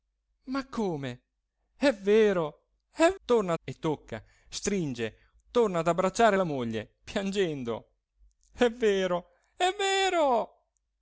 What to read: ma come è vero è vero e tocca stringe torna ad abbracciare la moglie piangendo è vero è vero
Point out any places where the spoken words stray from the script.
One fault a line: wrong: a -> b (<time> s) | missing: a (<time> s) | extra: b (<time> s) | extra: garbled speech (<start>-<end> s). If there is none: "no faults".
wrong: vero -> torna (3.2 s)